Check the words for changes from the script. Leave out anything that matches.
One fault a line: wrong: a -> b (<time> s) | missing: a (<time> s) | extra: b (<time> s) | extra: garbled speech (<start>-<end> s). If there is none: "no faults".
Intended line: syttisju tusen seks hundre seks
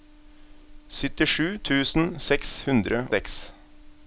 no faults